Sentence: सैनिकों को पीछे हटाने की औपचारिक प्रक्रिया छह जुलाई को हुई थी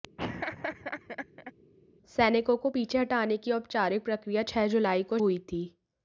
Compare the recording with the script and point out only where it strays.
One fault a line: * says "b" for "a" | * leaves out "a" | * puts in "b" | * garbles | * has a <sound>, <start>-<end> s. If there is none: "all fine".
* has a laugh, 0.2-1.5 s